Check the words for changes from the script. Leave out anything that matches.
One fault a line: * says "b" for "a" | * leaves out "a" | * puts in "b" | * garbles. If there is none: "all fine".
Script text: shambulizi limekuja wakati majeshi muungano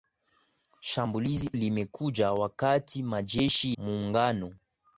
all fine